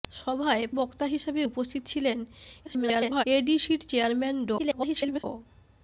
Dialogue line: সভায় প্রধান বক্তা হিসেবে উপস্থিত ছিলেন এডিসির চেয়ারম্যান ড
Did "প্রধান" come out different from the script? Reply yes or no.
yes